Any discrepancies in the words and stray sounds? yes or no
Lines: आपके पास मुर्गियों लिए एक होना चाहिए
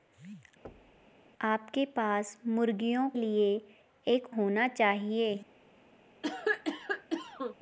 yes